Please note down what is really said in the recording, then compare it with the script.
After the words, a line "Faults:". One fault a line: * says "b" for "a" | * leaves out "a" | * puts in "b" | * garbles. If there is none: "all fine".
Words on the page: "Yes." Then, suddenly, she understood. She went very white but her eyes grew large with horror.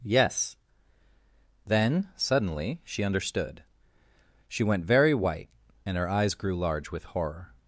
"Yes." Then, suddenly, she understood. She went very white and her eyes grew large with horror.
Faults:
* says "and" for "but"